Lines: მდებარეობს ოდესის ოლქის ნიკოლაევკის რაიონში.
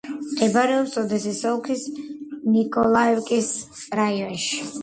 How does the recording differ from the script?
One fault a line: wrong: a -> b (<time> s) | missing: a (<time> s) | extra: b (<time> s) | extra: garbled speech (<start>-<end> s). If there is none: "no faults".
no faults